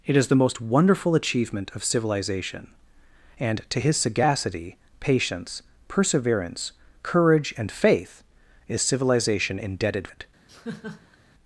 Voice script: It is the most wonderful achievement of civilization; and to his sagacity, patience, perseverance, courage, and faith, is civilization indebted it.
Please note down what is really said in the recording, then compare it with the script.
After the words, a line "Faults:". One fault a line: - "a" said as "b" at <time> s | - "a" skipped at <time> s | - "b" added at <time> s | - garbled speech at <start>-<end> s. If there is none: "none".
It is the most wonderful achievement of civilization; and to his sagacity, patience, perseverance, courage, and faith, is civilization indebted it.
Faults:
none